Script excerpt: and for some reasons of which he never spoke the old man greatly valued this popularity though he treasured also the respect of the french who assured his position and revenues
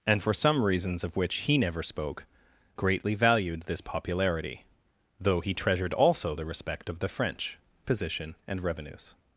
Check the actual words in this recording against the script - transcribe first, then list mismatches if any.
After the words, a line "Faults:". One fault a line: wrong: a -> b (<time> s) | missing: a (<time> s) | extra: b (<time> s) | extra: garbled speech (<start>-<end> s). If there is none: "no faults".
and for some reasons of which he never spoke greatly valued this popularity though he treasured also the respect of the french position and revenues
Faults:
missing: the old man (2.2 s)
missing: who assured his (7.6 s)